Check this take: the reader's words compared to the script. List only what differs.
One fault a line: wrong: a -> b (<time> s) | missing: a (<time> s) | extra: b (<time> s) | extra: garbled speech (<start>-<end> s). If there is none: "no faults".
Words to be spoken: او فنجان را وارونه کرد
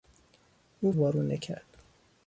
missing: فنجان را (0.9 s)